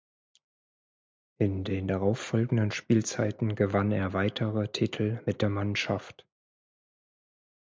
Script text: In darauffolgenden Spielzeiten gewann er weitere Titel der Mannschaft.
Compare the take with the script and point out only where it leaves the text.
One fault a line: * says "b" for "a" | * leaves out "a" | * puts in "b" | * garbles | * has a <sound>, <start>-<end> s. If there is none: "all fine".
* puts in "den"
* puts in "mit"